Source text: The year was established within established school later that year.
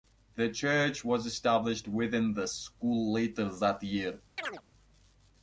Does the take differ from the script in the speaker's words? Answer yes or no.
yes